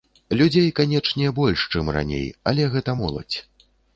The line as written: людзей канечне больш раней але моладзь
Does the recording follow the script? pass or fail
fail